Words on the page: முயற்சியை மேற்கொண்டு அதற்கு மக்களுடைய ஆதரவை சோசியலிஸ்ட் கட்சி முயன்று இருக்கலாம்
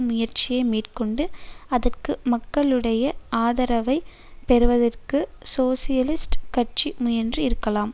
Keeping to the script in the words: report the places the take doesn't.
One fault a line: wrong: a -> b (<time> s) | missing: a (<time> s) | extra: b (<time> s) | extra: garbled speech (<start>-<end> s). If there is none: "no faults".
extra: பெறுவதற்கு (4.5 s)